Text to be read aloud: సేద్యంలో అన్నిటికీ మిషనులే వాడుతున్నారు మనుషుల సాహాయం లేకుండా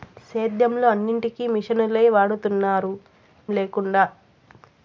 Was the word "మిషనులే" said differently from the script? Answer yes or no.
no